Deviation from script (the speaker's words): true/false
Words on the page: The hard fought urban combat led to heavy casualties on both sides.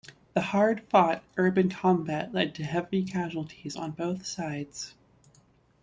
false